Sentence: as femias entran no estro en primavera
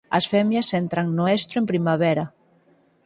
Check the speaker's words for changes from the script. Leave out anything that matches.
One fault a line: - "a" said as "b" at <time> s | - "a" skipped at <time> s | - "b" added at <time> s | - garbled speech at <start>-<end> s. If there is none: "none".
none